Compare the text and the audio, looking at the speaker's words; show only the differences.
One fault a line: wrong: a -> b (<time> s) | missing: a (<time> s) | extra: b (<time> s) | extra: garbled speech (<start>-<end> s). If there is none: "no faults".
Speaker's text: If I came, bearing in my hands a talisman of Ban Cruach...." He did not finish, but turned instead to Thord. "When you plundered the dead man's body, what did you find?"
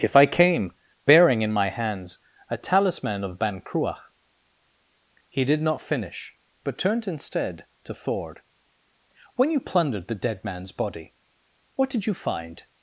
no faults